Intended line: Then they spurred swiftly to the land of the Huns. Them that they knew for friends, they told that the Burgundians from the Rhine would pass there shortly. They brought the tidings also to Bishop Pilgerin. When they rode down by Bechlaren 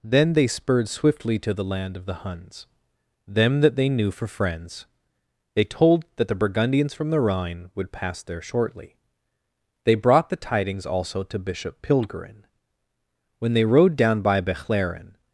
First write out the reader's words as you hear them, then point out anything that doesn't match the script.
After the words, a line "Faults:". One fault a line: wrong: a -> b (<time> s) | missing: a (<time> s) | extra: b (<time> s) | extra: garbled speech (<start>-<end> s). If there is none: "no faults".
Then they spurred swiftly to the land of the Huns. Them that they knew for friends, they told that the Burgundians from the Rhine would pass there shortly. They brought the tidings also to Bishop Pilgerin. When they rode down by Bechlaren
Faults:
no faults